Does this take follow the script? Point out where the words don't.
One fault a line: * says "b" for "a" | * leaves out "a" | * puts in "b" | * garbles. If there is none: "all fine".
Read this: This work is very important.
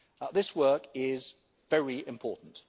all fine